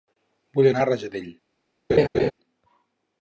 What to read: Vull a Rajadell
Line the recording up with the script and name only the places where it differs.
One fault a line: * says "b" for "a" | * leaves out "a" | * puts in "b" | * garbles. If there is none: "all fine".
* puts in "anar"